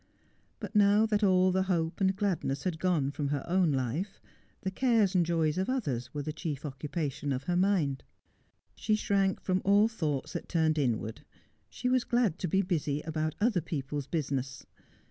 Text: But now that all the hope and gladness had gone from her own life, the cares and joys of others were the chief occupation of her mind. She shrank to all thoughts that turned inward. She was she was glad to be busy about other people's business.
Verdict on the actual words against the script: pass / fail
fail